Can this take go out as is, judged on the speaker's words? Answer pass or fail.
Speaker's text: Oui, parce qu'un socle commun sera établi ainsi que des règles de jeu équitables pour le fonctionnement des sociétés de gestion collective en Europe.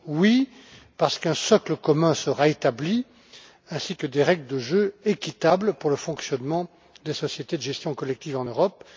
pass